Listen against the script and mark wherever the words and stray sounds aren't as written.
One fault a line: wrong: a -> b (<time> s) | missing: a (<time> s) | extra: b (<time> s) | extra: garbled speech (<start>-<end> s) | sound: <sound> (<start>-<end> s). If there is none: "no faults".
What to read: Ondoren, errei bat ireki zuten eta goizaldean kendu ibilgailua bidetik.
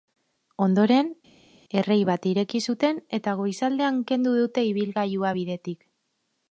extra: dute (4.4 s)